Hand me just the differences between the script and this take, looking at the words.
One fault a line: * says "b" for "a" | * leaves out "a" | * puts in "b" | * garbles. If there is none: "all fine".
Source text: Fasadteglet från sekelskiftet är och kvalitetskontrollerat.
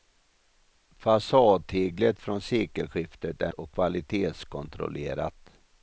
all fine